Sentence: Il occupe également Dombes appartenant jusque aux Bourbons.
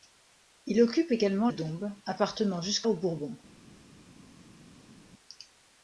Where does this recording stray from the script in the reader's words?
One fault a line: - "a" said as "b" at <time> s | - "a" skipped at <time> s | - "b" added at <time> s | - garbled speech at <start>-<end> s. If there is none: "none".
none